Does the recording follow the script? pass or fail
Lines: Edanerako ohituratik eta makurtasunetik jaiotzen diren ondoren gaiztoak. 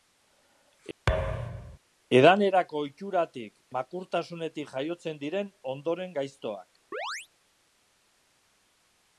fail